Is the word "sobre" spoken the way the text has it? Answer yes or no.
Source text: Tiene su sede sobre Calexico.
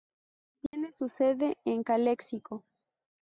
no